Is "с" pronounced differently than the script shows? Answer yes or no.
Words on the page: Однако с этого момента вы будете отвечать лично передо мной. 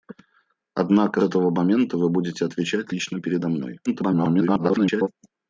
yes